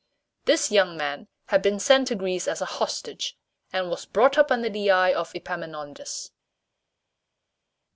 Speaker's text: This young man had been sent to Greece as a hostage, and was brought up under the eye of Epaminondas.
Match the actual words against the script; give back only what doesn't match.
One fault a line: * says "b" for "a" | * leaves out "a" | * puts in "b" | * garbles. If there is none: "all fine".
all fine